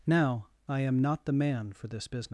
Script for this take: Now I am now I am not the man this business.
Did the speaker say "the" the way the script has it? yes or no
yes